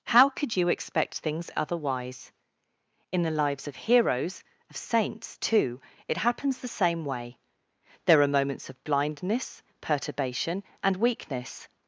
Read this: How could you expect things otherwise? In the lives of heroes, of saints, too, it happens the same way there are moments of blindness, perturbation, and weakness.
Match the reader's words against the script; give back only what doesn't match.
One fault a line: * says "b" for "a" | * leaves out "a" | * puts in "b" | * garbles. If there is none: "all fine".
all fine